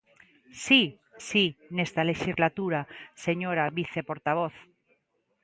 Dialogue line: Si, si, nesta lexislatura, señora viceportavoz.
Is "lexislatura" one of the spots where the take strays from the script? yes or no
no